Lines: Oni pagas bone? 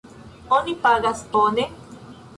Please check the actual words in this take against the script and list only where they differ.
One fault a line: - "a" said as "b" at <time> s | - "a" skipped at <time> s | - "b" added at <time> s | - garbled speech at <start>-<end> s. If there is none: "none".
none